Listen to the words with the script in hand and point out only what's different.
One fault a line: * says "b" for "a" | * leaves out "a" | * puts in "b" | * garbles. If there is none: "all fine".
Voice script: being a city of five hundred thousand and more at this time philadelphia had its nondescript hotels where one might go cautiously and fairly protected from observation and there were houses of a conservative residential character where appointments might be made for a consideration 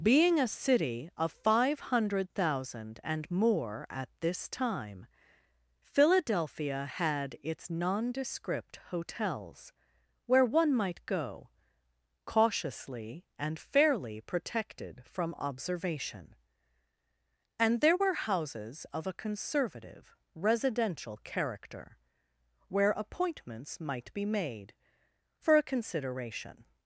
all fine